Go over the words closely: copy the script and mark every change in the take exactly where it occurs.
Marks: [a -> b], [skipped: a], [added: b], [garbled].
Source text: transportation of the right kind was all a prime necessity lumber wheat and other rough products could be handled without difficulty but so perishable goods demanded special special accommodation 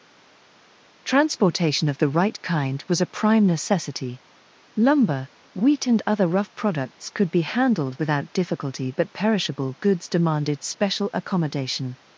transportation of the right kind was [skipped: all] a prime necessity lumber wheat and other rough products could be handled without difficulty but [skipped: so] perishable goods demanded special [skipped: special] accommodation